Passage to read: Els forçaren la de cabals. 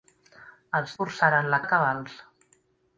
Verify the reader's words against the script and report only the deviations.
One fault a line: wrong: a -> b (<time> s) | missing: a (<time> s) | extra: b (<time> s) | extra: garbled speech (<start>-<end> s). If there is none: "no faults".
no faults